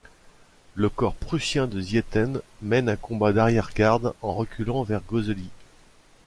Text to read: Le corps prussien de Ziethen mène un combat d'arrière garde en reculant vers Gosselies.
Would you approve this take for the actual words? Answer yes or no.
yes